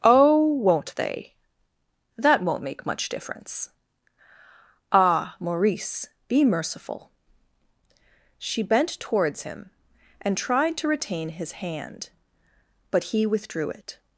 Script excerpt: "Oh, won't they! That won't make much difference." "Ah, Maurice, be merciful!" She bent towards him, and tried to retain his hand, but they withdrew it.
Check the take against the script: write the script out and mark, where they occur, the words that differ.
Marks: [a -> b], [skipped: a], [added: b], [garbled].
"Oh, won't they! That won't make much difference." "Ah, Maurice, be merciful!" She bent towards him, and tried to retain his hand, but [they -> he] withdrew it.